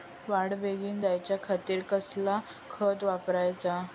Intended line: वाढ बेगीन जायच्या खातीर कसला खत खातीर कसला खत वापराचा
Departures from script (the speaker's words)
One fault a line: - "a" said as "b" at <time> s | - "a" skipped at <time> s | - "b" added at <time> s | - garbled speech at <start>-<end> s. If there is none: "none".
- "खातीर कसला खत" skipped at 3.0 s